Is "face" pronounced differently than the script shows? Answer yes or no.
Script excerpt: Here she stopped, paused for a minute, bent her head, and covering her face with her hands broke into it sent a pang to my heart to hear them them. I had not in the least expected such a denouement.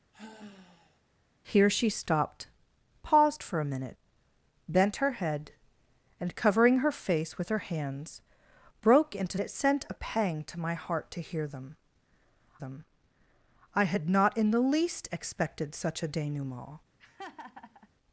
no